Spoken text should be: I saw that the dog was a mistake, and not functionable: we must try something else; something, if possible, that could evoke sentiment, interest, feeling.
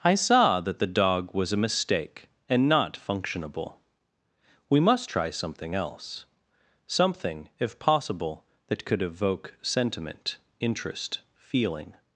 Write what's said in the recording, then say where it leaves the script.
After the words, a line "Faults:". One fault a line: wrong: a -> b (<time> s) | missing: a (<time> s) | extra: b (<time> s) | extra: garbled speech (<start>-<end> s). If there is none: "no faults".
I saw that the dog was a mistake, and not functionable: we must try something else; something, if possible, that could evoke sentiment, interest, feeling.
Faults:
no faults